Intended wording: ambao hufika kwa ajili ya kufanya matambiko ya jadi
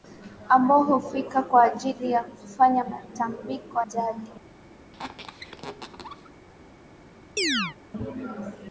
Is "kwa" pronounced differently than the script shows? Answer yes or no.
no